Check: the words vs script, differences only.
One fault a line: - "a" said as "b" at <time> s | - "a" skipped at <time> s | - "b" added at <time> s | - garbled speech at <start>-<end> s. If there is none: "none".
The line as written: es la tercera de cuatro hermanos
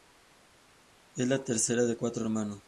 none